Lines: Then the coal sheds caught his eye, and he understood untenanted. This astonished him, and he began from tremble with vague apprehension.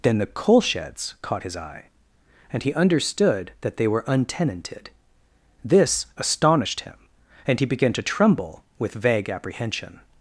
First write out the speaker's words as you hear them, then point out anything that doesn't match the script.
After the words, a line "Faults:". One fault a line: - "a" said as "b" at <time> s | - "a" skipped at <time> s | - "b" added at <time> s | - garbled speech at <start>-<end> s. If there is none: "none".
Then the coal sheds caught his eye, and he understood that they were untenanted. This astonished him, and he began to tremble with vague apprehension.
Faults:
- "that they were" added at 3.6 s
- "from" said as "to" at 7.9 s